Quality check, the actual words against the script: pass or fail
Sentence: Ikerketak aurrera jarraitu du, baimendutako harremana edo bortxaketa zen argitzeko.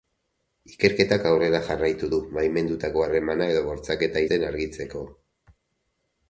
pass